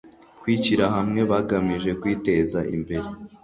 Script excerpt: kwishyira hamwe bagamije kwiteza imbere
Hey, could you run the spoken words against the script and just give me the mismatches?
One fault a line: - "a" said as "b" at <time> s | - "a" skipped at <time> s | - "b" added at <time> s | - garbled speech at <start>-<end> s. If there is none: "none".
none